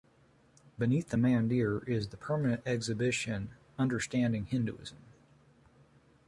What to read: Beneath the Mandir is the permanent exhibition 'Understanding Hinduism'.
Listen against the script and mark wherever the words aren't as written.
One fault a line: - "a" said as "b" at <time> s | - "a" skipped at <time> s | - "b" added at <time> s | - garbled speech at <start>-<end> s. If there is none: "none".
none